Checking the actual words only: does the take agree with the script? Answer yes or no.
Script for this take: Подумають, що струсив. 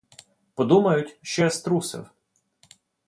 no